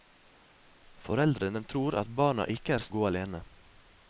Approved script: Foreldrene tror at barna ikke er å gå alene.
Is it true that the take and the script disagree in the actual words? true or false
false